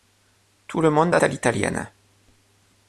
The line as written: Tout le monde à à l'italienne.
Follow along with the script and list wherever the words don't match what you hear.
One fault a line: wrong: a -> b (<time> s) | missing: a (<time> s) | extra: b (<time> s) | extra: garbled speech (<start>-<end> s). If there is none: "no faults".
no faults